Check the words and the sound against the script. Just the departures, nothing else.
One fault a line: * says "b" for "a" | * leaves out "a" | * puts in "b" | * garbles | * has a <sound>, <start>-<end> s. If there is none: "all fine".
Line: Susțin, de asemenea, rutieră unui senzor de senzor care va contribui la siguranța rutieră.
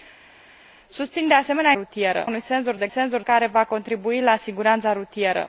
all fine